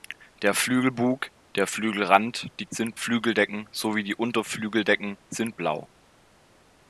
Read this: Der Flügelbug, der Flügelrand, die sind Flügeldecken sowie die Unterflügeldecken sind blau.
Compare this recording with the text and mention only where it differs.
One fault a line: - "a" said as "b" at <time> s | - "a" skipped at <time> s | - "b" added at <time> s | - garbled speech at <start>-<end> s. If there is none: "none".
none